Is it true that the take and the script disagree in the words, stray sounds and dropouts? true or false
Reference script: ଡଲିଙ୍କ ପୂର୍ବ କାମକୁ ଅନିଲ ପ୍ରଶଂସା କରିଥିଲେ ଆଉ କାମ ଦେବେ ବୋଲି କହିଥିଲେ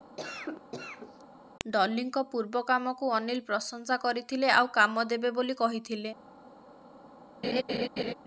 true